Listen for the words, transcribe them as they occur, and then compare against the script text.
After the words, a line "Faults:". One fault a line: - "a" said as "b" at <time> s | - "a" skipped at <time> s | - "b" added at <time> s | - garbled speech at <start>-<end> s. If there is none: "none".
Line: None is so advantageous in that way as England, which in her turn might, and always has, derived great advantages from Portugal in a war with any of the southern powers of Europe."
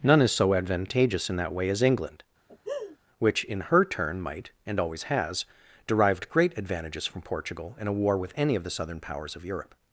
None is so advantageous in that way as England, which in her turn might, and always has, derived great advantages from Portugal in a war with any of the southern powers of Europe."
Faults:
none